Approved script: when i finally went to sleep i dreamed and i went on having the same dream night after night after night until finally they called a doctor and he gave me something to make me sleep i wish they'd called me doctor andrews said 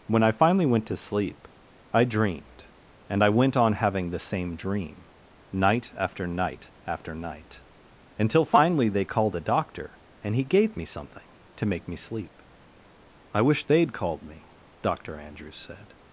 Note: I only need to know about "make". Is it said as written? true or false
true